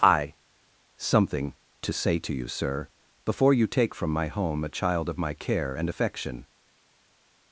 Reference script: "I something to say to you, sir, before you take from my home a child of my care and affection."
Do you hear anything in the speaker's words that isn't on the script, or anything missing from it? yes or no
no